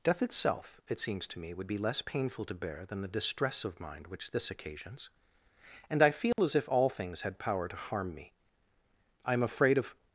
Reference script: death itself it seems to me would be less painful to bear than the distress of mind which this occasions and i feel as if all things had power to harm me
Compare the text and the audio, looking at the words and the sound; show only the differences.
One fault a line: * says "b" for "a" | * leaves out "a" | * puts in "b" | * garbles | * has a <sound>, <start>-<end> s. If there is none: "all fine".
* has a dropout, 6.3-6.4 s
* puts in "i am afraid of"